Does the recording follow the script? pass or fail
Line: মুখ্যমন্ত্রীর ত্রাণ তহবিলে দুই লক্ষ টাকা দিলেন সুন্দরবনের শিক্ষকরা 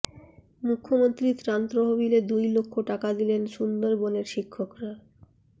pass